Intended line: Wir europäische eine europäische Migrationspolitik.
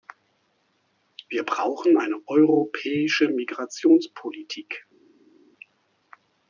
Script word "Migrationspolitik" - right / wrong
right